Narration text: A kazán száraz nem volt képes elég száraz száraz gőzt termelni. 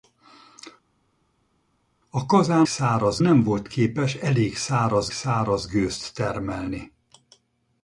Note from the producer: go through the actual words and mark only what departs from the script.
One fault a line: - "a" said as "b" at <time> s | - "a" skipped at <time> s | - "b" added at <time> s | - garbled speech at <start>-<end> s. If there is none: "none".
none